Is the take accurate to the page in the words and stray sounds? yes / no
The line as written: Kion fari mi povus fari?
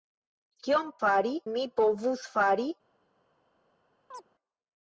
no